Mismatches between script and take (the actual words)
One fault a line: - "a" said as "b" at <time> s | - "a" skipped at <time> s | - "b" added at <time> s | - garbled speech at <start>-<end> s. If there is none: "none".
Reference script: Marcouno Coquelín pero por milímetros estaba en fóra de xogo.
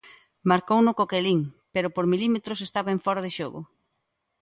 none